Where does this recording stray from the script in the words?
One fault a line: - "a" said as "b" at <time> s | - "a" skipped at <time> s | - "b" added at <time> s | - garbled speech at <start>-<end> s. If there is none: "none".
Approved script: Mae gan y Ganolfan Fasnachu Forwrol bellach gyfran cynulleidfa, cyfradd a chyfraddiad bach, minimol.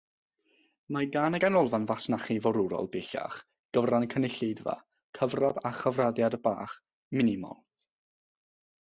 none